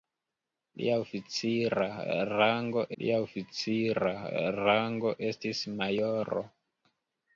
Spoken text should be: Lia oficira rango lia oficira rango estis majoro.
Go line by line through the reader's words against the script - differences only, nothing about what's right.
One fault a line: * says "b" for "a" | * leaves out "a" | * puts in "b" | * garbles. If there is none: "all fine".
all fine